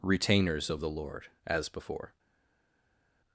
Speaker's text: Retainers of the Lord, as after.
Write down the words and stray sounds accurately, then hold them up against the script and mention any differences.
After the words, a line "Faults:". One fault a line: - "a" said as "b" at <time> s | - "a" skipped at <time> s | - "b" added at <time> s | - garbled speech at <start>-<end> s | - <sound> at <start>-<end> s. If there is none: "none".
Retainers of the Lord, as before.
Faults:
- "after" said as "before" at 1.7 s